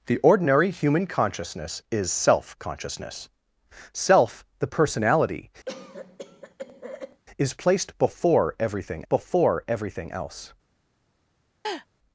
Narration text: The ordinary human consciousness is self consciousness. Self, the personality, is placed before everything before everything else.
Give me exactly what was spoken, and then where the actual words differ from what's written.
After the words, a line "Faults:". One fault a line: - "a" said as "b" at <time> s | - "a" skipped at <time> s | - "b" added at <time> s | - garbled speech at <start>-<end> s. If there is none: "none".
The ordinary human consciousness is self consciousness. Self, the personality, is placed before everything before everything else.
Faults:
none